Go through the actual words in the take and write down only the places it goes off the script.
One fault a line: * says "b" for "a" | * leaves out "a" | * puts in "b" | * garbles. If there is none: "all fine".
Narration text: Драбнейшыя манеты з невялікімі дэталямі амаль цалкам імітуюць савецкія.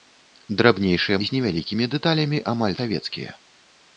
* leaves out "манеты"
* leaves out "цалкам імітуюць"